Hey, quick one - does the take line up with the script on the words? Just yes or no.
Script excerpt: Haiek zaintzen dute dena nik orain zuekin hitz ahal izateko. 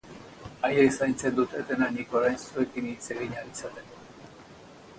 no